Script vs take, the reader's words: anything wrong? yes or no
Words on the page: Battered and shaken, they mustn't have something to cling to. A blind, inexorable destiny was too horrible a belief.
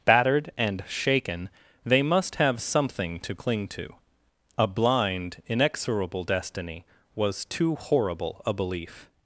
yes